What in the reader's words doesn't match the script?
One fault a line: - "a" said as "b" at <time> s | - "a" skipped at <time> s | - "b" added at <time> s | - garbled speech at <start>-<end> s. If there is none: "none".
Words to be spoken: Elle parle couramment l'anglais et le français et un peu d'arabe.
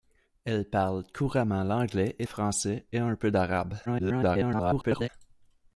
- "le" skipped at 2.3 s
- garbled speech at 3.9-5.1 s